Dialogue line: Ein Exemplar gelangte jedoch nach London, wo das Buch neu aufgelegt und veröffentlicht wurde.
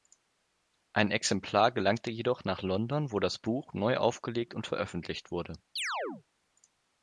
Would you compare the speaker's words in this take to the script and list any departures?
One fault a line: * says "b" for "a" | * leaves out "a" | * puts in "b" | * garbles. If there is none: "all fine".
all fine